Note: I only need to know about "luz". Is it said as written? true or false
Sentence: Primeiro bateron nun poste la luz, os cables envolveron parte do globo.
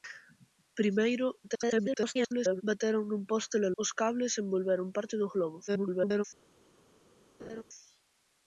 false